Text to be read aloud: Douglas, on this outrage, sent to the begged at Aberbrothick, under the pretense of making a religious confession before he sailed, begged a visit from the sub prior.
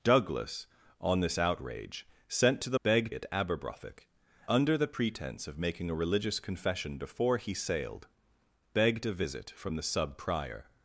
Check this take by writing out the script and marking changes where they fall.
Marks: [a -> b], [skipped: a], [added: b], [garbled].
Douglas, on this outrage, sent to the begged at Aberbrothick, under the pretense of making a religious confession before he sailed, begged a visit from the sub prior.